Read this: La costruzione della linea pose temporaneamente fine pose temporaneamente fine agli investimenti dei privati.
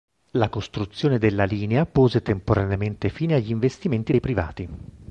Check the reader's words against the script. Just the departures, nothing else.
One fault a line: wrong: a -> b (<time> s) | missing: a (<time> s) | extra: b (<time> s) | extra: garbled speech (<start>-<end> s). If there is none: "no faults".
missing: pose temporaneamente fine (3.4 s)